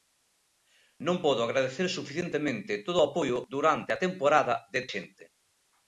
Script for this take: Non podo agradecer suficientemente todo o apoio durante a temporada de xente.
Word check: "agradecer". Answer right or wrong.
right